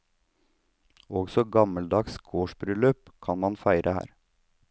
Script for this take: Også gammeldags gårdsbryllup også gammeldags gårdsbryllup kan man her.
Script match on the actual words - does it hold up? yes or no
no